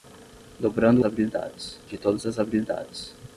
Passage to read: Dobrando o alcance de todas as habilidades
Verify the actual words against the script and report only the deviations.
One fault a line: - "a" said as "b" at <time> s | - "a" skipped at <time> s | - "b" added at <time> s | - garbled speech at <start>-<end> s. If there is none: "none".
- "alcance" said as "habilidades" at 1.0 s